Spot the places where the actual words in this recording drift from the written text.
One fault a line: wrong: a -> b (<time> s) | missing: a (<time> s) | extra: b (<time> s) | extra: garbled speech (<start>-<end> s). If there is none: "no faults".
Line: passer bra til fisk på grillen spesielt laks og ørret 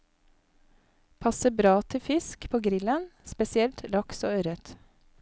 no faults